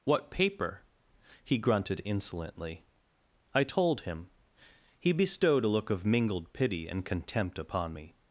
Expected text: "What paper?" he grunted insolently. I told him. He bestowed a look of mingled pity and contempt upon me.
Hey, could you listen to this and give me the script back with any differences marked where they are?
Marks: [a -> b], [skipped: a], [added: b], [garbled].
"What paper?" he grunted insolently. I told him. He bestowed a look of mingled pity and contempt upon me.